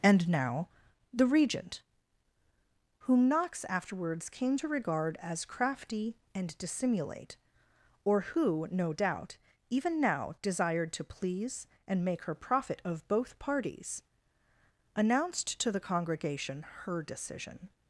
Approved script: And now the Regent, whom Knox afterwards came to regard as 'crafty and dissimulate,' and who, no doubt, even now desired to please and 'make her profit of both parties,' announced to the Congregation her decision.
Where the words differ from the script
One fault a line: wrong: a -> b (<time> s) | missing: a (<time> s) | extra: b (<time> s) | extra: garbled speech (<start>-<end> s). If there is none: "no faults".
wrong: and -> or (8.0 s)